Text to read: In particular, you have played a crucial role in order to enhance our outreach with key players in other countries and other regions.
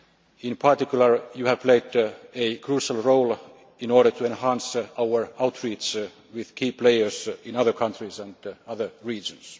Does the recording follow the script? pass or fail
pass